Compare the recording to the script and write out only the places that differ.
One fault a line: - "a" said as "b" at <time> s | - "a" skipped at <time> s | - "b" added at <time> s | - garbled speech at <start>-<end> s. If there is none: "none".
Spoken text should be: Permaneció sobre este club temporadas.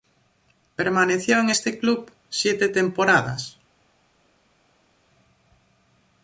- "sobre" said as "en" at 1.4 s
- "siete" added at 2.3 s